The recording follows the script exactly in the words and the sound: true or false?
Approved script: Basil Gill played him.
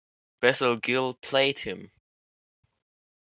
true